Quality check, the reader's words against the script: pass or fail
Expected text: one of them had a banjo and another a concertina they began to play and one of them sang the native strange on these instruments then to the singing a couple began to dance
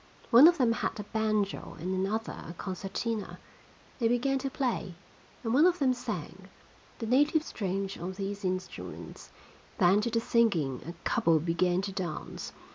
pass